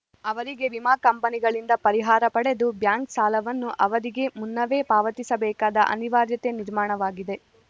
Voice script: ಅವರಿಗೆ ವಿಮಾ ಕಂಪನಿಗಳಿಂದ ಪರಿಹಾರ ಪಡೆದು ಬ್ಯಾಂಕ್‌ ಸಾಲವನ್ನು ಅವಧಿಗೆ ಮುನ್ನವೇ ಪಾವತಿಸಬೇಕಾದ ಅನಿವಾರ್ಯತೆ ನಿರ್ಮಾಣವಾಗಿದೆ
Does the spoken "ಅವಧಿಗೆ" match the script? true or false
true